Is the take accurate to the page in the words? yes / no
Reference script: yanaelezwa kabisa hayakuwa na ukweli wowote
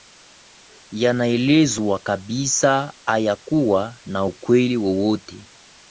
yes